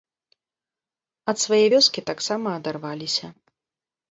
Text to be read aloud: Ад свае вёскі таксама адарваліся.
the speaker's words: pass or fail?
pass